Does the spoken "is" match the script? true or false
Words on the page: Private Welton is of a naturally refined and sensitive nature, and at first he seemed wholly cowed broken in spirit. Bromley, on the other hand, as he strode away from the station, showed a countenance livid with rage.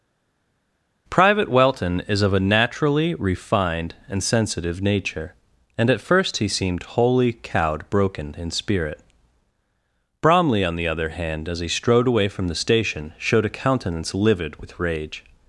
true